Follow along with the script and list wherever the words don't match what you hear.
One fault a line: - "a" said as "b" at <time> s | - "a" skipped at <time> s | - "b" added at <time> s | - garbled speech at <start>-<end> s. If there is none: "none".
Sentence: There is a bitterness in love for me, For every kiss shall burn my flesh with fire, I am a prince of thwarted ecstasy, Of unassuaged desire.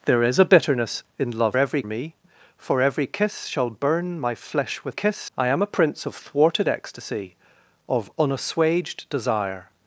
- "for" said as "every" at 1.6 s
- "fire" said as "kiss" at 4.9 s